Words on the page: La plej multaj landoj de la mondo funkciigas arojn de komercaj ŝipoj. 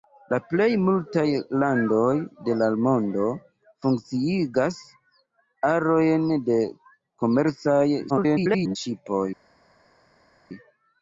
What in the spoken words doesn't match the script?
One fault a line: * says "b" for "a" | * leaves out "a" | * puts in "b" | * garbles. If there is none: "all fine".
* garbles